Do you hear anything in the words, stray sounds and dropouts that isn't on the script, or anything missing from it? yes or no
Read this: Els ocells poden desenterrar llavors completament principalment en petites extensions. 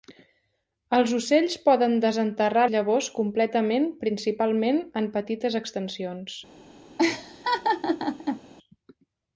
yes